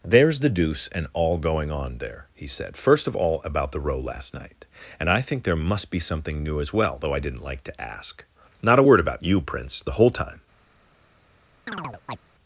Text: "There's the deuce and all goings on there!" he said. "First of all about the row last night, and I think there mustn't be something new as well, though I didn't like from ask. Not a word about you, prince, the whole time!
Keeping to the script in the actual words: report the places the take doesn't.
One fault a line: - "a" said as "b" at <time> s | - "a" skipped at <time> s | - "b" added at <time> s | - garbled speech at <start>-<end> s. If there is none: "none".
- "goings" said as "going" at 1.4 s
- "mustn't" said as "must" at 5.5 s
- "from" said as "to" at 7.7 s